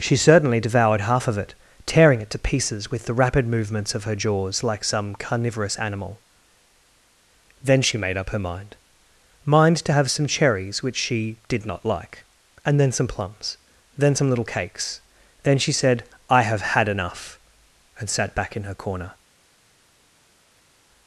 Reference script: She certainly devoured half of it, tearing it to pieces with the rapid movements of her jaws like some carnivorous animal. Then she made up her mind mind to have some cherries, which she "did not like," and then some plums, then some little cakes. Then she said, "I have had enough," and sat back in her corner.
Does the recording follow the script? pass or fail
pass